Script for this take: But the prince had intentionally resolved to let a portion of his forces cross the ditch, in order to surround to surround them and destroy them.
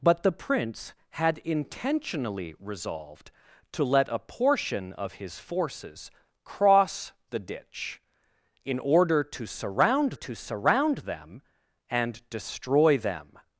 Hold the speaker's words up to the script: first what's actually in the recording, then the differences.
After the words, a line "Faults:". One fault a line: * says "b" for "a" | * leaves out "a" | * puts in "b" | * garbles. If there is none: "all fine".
But the prince had intentionally resolved to let a portion of his forces cross the ditch, in order to surround to surround them and destroy them.
Faults:
all fine